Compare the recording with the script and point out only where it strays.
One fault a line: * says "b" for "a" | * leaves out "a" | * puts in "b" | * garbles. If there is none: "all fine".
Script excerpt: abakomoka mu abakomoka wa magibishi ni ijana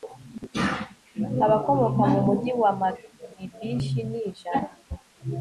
* says "mugi" for "abakomoka"